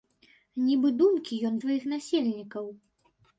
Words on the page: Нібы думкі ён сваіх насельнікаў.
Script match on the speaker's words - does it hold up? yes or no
yes